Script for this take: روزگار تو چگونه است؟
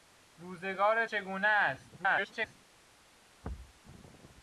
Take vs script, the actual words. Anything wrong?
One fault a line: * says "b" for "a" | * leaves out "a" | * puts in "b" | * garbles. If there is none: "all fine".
* leaves out "تو"
* garbles